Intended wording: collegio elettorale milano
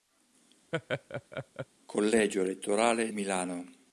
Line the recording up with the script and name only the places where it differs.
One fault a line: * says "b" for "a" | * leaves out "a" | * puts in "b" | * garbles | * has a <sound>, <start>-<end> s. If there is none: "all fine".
* has a laugh, 0.7-1.7 s